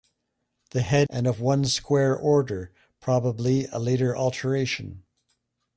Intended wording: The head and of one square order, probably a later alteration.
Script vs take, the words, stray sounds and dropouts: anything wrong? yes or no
no